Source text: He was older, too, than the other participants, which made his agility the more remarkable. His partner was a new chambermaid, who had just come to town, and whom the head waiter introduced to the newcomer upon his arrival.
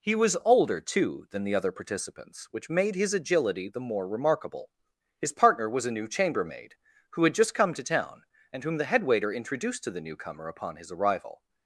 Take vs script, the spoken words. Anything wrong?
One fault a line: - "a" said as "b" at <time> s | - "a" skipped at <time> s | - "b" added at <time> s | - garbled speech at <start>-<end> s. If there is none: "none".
none